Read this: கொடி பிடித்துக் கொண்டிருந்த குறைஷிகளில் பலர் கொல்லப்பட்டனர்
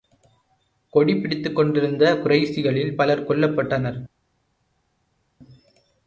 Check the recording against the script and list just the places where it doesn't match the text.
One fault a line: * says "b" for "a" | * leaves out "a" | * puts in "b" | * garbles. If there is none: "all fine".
all fine